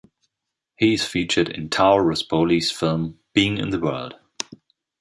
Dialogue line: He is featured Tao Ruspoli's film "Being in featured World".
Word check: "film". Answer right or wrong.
right